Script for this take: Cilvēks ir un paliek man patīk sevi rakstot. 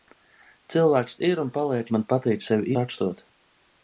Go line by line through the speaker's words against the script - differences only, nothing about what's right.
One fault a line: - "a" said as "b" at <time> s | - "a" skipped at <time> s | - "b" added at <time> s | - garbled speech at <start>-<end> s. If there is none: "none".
none